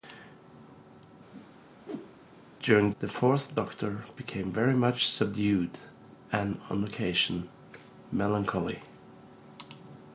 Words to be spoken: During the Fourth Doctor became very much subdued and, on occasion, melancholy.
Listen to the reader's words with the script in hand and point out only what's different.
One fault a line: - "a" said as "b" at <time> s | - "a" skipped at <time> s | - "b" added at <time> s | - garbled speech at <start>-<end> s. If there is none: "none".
none